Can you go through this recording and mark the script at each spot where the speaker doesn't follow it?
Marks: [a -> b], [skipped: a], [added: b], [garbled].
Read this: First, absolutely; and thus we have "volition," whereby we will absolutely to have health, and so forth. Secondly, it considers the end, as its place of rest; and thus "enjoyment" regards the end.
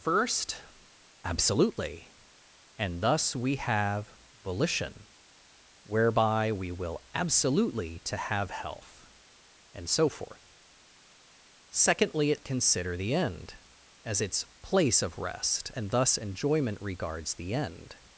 First, absolutely; and thus we have "volition," whereby we will absolutely to have health, and so forth. Secondly, it [considers -> consider] the end, as its place of rest; and thus "enjoyment" regards the end.